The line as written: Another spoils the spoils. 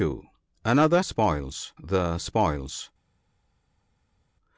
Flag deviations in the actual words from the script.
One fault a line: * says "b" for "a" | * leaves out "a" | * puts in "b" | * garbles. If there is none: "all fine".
all fine